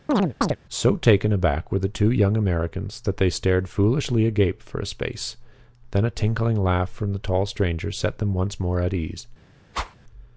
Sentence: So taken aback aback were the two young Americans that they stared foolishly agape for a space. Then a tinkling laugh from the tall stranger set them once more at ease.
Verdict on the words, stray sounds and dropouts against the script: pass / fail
fail